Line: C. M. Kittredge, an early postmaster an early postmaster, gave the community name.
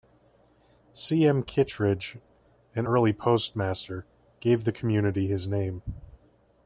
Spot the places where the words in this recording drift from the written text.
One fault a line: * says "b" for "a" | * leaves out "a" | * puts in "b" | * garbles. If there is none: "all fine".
* leaves out "an early postmaster"
* puts in "his"